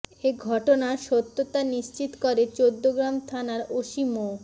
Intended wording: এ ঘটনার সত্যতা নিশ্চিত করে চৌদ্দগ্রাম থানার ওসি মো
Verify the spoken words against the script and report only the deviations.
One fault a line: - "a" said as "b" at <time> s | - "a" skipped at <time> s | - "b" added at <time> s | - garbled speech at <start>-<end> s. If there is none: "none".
none